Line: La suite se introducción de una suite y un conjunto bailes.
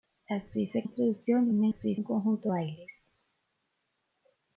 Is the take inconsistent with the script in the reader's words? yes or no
no